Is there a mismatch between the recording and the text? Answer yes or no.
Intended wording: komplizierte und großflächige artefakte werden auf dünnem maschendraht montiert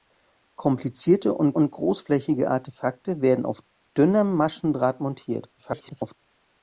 yes